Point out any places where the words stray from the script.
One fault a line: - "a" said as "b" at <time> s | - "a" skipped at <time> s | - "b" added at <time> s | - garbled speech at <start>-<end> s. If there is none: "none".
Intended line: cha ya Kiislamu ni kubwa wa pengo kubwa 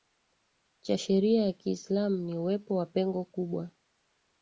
- "sheria" added at 1.0 s
- "kubwa" said as "uwepo" at 2.4 s